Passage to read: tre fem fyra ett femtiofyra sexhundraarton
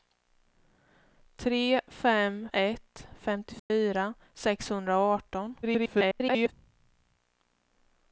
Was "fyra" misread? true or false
true